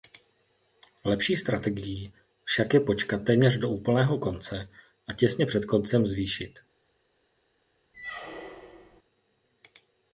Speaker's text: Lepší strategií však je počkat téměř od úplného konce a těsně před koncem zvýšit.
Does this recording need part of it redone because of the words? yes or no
yes